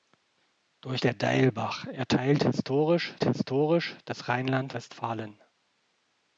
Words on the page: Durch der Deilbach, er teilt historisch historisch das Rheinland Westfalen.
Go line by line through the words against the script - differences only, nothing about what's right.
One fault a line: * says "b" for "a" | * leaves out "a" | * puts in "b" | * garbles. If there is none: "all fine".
all fine